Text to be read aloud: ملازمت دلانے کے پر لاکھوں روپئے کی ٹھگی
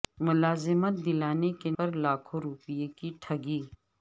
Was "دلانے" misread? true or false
false